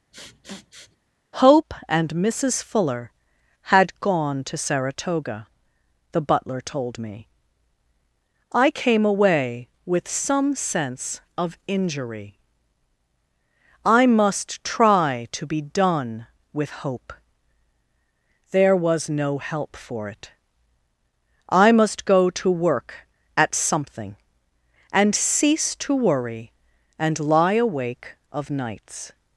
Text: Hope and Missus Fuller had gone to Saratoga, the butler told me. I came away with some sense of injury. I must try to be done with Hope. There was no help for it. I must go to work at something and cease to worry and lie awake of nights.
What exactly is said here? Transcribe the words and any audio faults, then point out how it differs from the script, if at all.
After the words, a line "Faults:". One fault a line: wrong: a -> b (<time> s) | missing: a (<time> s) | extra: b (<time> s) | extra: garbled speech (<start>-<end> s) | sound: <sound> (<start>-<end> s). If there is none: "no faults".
Hope and Missus Fuller had gone to Saratoga, the butler told me. I came away with some sense of injury. I must try to be done with Hope. There was no help for it. I must go to work at something and cease to worry and lie awake of nights.
Faults:
sound: sniff (0.1-1.0 s)